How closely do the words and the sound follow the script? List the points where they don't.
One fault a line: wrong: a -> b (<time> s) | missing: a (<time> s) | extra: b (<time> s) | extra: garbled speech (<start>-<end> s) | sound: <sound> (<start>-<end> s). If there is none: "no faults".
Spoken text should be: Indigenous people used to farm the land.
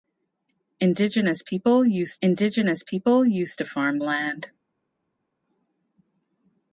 extra: indigenous people used (2.2 s)
missing: the (4.0 s)